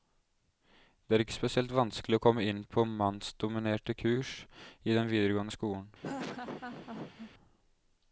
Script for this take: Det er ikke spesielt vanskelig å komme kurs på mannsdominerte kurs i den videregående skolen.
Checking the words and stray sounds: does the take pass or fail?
fail